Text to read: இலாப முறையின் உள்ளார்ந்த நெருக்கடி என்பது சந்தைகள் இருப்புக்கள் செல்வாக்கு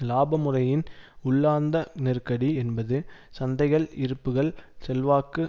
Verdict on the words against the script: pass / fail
pass